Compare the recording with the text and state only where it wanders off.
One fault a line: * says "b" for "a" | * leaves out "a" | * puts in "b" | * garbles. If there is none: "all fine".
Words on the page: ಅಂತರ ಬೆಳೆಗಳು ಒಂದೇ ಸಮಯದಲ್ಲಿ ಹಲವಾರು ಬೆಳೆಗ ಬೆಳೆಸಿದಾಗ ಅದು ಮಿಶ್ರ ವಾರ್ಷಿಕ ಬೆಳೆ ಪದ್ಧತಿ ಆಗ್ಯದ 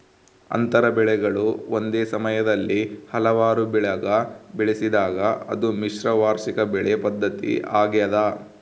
all fine